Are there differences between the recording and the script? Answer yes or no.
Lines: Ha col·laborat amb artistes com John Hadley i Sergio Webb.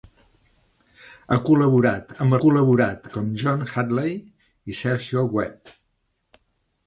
yes